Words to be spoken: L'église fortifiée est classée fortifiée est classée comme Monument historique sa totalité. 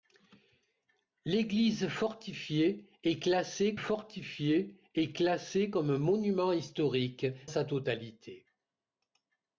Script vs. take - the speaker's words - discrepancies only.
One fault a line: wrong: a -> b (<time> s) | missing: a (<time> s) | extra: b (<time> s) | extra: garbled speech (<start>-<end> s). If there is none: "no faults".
no faults